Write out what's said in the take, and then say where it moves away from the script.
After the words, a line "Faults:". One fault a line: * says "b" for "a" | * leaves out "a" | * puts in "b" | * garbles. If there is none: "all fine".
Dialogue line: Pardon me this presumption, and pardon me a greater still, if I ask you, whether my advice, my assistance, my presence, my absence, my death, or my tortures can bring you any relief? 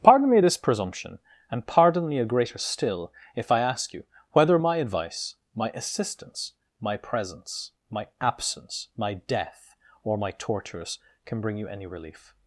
Pardon me this presumption, and pardon me a greater still, if I ask you, whether my advice, my assistance, my presence, my absence, my death, or my tortures can bring you any relief?
Faults:
all fine